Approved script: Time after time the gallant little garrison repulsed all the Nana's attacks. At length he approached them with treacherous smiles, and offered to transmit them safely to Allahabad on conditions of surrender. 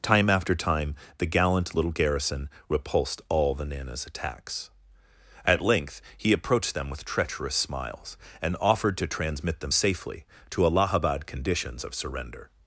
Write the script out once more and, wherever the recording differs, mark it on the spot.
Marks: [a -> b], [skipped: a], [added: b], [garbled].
Time after time the gallant little garrison repulsed all the Nana's attacks. At length he approached them with treacherous smiles, and offered to transmit them safely to Allahabad [skipped: on] conditions of surrender.